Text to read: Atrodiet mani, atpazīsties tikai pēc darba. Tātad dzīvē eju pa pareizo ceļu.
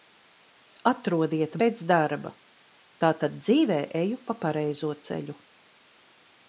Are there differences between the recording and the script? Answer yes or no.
yes